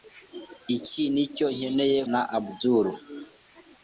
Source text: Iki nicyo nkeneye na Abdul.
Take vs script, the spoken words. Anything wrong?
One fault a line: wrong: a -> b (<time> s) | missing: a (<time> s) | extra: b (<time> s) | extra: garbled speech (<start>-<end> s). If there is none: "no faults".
no faults